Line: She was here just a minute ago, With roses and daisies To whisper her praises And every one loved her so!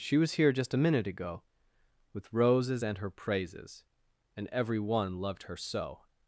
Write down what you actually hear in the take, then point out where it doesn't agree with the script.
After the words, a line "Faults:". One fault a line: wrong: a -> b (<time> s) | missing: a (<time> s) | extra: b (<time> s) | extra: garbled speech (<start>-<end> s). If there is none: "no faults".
She was here just a minute ago, With roses and her praises And every one loved her so!
Faults:
missing: daisies To whisper (3.0 s)